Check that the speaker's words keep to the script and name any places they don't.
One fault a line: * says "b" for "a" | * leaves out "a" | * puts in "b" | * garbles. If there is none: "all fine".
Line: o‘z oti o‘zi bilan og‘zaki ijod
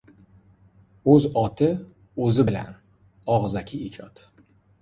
all fine